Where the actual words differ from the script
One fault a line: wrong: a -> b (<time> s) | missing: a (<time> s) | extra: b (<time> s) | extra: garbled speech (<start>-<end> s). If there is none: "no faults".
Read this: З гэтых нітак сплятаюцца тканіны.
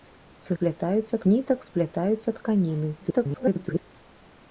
wrong: гэтых -> сплятаюцца (0.5 s)
extra: garbled speech (3.0-3.8 s)